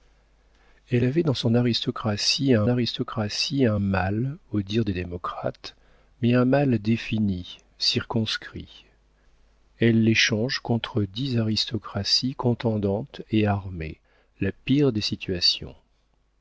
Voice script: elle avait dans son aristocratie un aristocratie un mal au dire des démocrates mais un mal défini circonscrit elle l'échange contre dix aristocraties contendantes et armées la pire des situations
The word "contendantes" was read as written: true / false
true